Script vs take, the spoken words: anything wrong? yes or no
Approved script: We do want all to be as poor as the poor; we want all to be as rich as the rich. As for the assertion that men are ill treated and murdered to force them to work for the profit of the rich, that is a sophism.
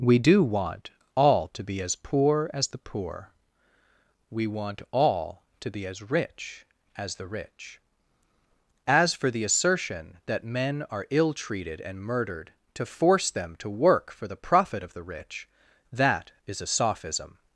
no